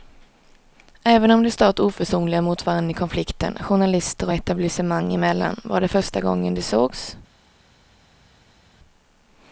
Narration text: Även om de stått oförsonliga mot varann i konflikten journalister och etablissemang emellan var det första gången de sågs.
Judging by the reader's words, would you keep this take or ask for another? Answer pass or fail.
pass